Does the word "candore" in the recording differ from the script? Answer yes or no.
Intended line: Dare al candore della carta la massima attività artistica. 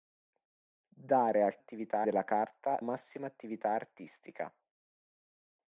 yes